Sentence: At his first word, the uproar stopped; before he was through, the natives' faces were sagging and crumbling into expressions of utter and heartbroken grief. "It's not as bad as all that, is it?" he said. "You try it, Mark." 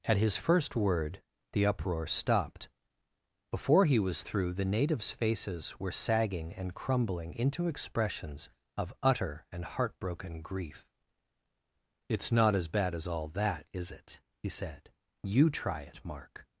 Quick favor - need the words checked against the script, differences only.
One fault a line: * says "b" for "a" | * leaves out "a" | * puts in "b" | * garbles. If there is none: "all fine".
all fine